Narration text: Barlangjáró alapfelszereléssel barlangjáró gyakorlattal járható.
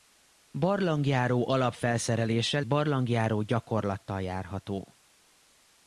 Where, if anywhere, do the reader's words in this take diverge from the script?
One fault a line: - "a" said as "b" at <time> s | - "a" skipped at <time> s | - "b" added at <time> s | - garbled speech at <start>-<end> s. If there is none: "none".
none